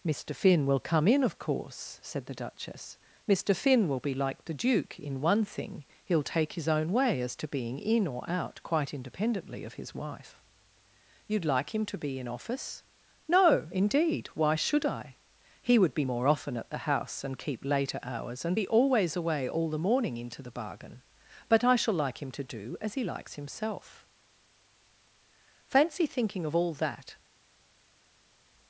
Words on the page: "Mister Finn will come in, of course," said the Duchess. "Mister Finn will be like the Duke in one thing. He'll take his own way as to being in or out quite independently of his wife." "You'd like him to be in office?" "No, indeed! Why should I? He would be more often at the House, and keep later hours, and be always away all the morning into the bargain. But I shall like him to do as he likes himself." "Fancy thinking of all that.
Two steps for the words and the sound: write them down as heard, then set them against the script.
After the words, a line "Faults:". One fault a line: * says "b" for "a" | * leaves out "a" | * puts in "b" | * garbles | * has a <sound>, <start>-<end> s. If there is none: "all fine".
"Mister Finn will come in, of course," said the Duchess. "Mister Finn will be like the Duke in one thing. He'll take his own way as to being in or out quite independently of his wife." "You'd like him to be in office?" "No, indeed! Why should I? He would be more often at the House, and keep later hours, and be always away all the morning into the bargain. But I shall like him to do as he likes himself." "Fancy thinking of all that.
Faults:
all fine